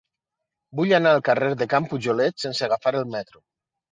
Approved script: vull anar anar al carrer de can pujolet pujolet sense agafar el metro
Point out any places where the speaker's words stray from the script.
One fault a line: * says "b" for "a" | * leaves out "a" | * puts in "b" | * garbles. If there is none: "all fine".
* leaves out "anar"
* leaves out "pujolet"